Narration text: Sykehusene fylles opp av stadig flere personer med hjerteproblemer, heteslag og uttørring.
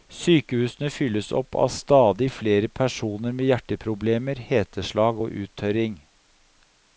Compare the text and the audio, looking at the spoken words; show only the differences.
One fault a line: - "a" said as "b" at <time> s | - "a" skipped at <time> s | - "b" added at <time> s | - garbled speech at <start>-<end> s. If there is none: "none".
none